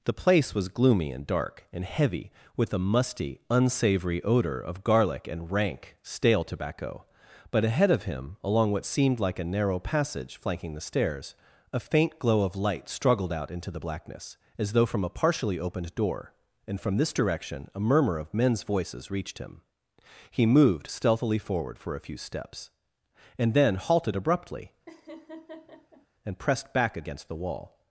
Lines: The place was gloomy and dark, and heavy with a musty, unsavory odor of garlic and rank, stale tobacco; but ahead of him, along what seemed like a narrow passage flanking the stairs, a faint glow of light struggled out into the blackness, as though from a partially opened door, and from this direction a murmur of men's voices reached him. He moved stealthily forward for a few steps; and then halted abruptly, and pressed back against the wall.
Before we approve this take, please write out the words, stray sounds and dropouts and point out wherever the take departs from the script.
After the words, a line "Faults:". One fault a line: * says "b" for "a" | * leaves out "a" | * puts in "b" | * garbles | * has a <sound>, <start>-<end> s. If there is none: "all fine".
The place was gloomy and dark, and heavy with a musty, unsavory odor of garlic and rank, stale tobacco; but ahead of him, along what seemed like a narrow passage flanking the stairs, a faint glow of light struggled out into the blackness, as though from a partially opened door, and from this direction a murmur of men's voices reached him. He moved stealthily forward for a few steps; and then halted abruptly, and pressed back against the wall.
Faults:
* has a laugh, 24.9-26.1 s